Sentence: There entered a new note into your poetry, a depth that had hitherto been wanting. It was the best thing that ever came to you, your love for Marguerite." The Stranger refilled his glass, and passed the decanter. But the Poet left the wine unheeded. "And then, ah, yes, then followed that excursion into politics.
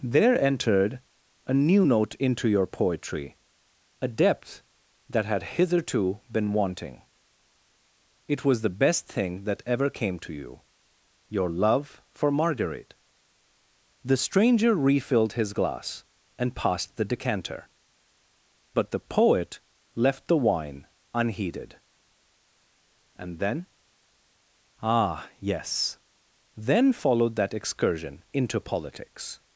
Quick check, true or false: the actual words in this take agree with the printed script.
true